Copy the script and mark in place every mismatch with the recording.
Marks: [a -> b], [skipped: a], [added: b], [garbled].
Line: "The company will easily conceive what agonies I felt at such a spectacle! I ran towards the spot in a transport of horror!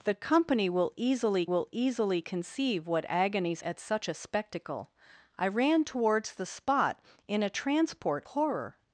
"The company will easily [added: will easily] conceive what agonies [skipped: I felt] at such a spectacle! I ran towards the spot in a transport [skipped: of] horror!